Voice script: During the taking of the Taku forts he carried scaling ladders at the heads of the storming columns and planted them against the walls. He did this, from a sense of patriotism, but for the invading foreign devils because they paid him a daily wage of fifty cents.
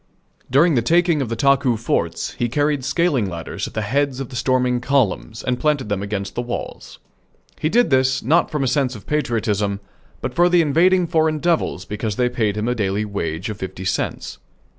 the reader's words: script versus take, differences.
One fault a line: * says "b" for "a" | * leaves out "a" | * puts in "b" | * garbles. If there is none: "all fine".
* puts in "not"